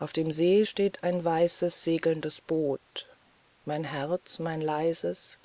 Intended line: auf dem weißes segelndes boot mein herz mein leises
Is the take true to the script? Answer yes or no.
no